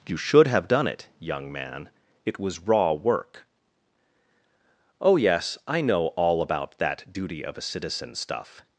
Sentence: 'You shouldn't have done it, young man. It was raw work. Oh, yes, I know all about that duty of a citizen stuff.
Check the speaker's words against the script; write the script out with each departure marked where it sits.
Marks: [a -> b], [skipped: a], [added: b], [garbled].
'You [shouldn't -> should] have done it, young man. It was raw work. Oh, yes, I know all about that duty of a citizen stuff.